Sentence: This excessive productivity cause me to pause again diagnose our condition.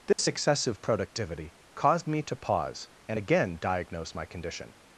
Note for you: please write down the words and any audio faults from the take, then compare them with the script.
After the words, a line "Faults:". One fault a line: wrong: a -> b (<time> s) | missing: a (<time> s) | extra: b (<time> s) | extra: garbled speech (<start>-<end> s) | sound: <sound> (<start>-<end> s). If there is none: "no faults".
This excessive productivity caused me to pause and again diagnose my condition.
Faults:
sound: dropout (0.1-0.2 s)
wrong: cause -> caused (1.7 s)
extra: and (3.1 s)
wrong: our -> my (4.1 s)